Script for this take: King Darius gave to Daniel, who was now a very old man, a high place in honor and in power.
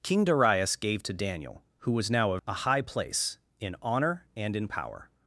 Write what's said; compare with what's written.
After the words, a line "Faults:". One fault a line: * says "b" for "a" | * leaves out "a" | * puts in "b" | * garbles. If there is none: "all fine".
King Darius gave to Daniel, who was now a a high place in honor and in power.
Faults:
* leaves out "very old man"